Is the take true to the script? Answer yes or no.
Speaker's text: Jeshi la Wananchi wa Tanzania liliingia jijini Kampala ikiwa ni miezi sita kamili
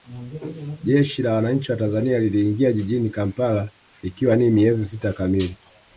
yes